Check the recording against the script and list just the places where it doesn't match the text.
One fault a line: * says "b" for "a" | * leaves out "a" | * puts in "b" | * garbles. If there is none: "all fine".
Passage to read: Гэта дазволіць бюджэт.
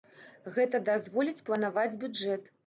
* puts in "планаваць"